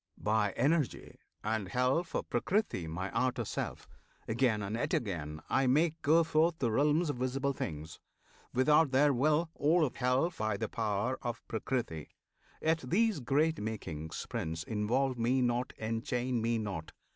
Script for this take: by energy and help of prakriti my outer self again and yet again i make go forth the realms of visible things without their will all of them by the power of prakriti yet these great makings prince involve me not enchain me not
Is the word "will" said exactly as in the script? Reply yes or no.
yes